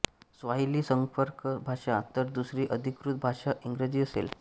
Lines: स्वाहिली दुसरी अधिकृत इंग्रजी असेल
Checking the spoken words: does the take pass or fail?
fail